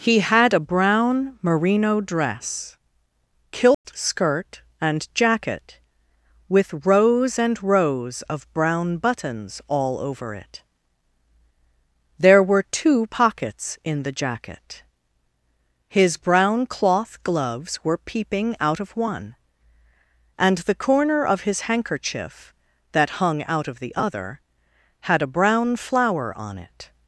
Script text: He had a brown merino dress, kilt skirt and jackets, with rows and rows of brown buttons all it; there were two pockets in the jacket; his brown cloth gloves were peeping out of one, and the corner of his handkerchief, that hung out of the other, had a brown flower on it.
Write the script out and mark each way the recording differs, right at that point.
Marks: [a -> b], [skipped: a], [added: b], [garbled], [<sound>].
He had a brown merino dress, kilt [dropout] skirt and [jackets, -> jacket] with rows and rows of brown buttons all [added: over] it; there were two pockets in the jacket; his brown cloth gloves were peeping out of one, and the corner of his handkerchief, that hung out of the other, had a brown flower on it.